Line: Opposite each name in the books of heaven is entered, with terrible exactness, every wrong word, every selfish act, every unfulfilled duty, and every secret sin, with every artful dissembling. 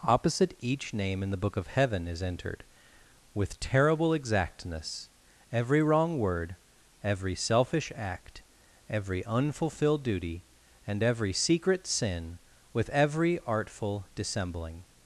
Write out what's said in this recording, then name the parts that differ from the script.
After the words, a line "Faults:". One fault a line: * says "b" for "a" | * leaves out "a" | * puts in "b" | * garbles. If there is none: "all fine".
Opposite each name in the book of heaven is entered, with terrible exactness, every wrong word, every selfish act, every unfulfilled duty, and every secret sin, with every artful dissembling.
Faults:
* says "book" for "books"